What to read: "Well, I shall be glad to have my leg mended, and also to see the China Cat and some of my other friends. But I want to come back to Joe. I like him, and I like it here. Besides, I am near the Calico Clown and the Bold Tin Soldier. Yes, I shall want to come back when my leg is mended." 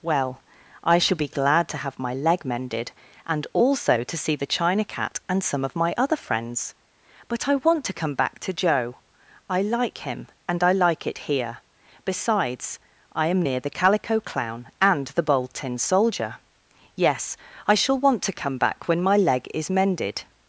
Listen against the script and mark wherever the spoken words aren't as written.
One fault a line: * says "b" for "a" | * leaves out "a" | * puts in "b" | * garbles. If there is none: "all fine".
all fine